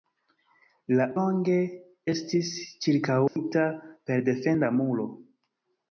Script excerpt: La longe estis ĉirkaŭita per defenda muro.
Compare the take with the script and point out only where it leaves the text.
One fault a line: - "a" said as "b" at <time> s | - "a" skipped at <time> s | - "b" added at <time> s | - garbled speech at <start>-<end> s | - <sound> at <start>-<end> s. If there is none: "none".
- dropout at 3.3-3.4 s